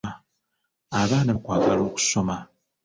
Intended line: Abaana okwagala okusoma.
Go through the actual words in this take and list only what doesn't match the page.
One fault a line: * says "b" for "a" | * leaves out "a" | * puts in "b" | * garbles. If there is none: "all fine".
all fine